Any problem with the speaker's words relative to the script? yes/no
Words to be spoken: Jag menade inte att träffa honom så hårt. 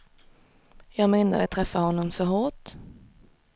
yes